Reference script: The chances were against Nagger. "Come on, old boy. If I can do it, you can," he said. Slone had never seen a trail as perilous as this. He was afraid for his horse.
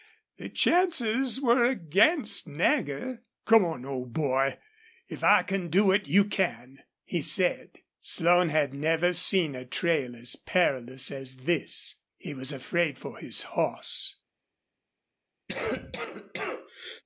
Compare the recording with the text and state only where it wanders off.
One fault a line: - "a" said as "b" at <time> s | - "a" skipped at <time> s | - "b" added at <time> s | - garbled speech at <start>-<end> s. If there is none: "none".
none